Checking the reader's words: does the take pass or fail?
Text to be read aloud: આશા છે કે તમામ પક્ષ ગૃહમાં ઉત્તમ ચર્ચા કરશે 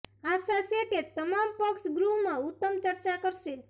pass